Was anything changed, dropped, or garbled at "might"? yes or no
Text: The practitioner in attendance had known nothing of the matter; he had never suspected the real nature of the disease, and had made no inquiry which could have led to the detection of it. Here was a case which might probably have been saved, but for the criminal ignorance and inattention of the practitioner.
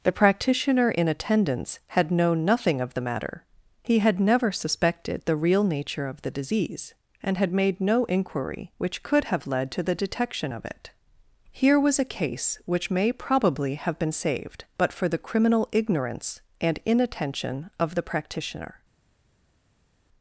yes